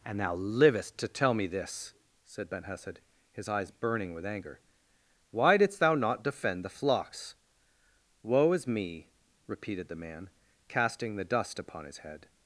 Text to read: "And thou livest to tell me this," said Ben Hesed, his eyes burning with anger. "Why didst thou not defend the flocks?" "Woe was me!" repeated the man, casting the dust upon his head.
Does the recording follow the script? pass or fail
fail